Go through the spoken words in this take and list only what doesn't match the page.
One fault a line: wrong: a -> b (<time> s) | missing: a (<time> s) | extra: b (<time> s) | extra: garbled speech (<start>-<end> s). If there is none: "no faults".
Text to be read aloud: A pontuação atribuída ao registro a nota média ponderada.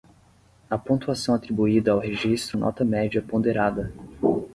no faults